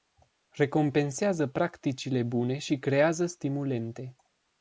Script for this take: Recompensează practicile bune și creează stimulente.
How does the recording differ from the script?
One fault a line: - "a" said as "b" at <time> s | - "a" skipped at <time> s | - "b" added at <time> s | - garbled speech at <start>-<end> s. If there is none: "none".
none